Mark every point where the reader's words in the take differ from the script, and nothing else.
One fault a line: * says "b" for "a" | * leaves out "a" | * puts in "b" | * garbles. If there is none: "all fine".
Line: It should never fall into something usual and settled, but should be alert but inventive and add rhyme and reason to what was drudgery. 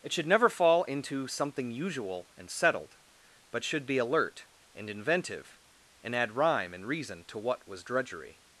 * says "and" for "but"